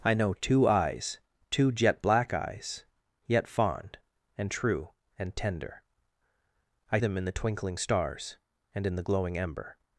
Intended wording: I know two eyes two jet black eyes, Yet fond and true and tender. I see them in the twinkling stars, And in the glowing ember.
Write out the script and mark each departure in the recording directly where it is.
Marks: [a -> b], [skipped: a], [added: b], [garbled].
I know two eyes two jet black eyes, Yet fond and true and tender. I [skipped: see] them in the twinkling stars, And in the glowing ember.